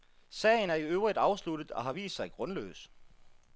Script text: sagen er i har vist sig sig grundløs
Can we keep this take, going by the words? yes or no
no